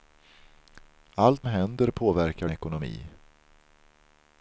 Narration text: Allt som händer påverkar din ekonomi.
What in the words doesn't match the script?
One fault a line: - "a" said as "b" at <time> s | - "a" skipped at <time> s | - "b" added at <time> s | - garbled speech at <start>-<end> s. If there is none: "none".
- "som" skipped at 1.5 s
- "din" skipped at 2.5 s